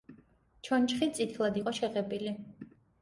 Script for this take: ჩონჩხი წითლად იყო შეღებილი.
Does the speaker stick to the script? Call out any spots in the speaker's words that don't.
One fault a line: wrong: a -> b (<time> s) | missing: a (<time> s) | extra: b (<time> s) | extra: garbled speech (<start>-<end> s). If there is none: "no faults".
no faults